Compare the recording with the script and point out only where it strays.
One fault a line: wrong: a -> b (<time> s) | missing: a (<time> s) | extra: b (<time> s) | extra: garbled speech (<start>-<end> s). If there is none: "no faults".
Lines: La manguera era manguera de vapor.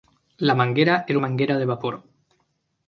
no faults